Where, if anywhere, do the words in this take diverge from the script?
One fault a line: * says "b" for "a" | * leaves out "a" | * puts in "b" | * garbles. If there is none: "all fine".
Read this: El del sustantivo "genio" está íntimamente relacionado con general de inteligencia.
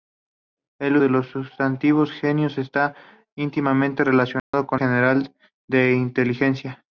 all fine